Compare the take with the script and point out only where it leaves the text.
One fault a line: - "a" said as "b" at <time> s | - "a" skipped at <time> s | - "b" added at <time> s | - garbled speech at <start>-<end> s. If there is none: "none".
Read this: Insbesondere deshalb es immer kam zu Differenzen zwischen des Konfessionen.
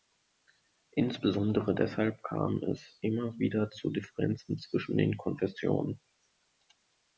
- "kam" added at 2.2 s
- "kam" said as "wieder" at 3.4 s
- "des" said as "den" at 5.0 s